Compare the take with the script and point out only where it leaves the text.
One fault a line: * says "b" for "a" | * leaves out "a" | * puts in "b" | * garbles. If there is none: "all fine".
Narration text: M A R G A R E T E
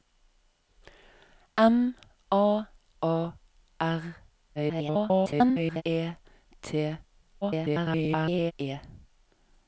* leaves out "R G"
* garbles
* garbles